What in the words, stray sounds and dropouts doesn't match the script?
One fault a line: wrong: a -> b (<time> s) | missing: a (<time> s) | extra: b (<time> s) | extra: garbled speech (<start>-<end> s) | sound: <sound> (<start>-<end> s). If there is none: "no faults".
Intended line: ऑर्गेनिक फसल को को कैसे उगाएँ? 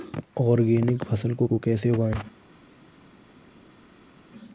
no faults